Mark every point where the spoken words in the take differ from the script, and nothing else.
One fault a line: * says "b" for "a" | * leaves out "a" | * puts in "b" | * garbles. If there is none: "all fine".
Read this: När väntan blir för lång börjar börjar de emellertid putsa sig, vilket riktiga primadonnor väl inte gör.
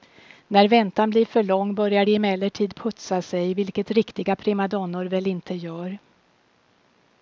* leaves out "börjar"